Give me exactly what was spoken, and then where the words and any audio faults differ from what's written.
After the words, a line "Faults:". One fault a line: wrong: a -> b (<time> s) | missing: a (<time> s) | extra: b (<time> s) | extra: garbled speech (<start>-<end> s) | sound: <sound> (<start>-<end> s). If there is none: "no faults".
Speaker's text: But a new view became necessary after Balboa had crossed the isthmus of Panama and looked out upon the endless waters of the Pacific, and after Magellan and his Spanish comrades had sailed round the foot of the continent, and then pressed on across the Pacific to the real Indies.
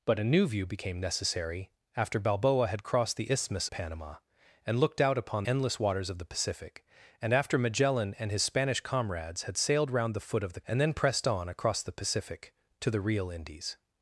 But a new view became necessary after Balboa had crossed the isthmus Panama and looked out upon endless waters of the Pacific, and after Magellan and his Spanish comrades had sailed round the foot of the and then pressed on across the Pacific to the real Indies.
Faults:
missing: of (3.7 s)
missing: the (5.4 s)
missing: continent (10.6 s)